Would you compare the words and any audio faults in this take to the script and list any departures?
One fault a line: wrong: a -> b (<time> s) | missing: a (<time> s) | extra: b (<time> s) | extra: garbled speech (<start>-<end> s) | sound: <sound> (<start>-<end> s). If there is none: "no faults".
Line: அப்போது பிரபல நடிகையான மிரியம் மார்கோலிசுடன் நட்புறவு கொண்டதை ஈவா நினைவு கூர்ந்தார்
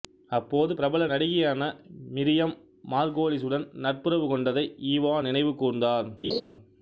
sound: laugh (6.2-6.4 s)